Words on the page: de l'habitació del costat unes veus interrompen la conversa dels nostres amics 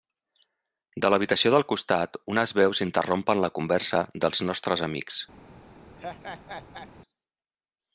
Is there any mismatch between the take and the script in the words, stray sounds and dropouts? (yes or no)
yes